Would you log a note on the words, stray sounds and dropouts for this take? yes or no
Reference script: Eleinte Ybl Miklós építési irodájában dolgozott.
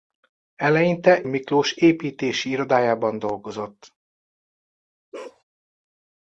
yes